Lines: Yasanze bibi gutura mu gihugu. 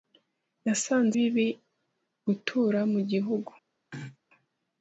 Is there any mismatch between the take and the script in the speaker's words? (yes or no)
no